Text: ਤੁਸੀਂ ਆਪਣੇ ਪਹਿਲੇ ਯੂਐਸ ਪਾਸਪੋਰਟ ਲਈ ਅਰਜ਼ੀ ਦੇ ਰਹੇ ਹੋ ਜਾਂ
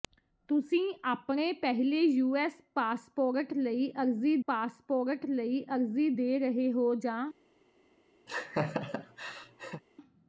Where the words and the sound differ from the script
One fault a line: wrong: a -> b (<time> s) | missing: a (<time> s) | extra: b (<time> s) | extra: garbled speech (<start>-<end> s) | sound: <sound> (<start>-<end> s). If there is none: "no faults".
extra: ਪਾਸਪੋਰਟ ਲਈ ਅਰਜ਼ੀ (4.5 s)
sound: laugh (8.3-9.8 s)